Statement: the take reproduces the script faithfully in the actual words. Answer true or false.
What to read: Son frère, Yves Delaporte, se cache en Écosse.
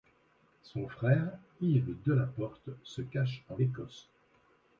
true